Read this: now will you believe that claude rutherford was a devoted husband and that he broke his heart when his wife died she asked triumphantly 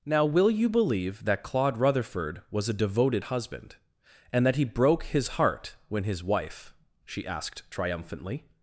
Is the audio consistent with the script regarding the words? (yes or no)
no